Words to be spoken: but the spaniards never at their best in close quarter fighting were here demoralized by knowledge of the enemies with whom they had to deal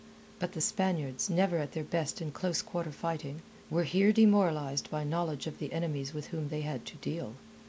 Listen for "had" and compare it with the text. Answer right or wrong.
right